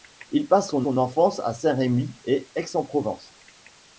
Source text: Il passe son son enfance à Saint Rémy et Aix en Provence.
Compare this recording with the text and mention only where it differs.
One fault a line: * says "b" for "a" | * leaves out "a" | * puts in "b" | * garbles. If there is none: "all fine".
all fine